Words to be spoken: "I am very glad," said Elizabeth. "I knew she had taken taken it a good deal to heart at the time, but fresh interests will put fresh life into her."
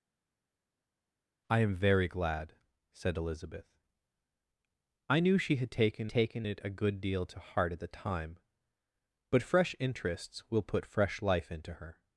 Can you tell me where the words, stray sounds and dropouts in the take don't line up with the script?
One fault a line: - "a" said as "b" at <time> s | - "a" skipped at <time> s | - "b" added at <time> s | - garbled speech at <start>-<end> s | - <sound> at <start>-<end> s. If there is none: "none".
none